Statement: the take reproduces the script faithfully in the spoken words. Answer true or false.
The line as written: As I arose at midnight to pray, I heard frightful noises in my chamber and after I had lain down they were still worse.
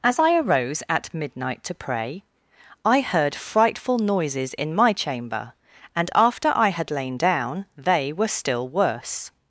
true